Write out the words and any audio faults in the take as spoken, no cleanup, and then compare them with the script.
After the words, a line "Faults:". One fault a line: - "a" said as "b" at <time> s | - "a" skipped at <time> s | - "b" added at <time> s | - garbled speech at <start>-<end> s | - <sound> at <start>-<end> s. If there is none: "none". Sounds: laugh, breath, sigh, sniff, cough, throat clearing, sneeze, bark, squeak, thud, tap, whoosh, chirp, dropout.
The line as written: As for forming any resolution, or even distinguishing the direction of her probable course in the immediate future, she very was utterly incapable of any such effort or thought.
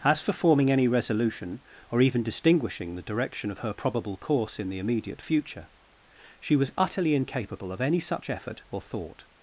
As for forming any resolution, or even distinguishing the direction of her probable course in the immediate future, she was utterly incapable of any such effort or thought.
Faults:
- "very" skipped at 6.5 s